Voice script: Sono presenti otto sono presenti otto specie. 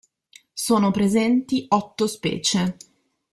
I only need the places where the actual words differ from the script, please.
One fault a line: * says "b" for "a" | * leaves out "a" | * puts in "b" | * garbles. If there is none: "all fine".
* leaves out "sono presenti otto"